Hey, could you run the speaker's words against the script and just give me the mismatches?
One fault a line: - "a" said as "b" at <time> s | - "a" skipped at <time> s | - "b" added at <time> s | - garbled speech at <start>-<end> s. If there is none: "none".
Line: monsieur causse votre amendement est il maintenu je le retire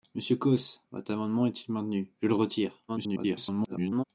- garbled speech at 2.9-4.0 s